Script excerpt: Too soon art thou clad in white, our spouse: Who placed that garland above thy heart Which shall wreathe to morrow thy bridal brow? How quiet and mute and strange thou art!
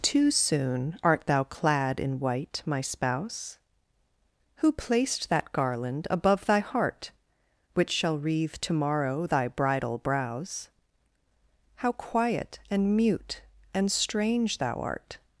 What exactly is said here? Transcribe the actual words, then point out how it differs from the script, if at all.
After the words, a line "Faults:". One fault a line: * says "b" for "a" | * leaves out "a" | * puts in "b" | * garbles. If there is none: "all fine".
Too soon art thou clad in white, my spouse: Who placed that garland above thy heart Which shall wreathe to morrow thy bridal brows? How quiet and mute and strange thou art!
Faults:
* says "my" for "our"
* says "brows" for "brow"